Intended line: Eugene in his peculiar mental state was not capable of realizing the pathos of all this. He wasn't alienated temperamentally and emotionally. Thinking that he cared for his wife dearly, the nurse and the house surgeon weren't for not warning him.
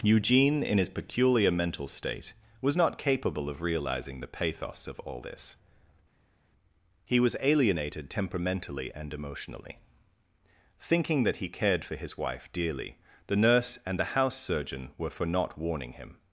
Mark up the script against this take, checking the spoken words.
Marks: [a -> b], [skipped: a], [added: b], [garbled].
Eugene in his peculiar mental state was not capable of realizing the pathos of all this. He [wasn't -> was] alienated temperamentally and emotionally. Thinking that he cared for his wife dearly, the nurse and the house surgeon [weren't -> were] for not warning him.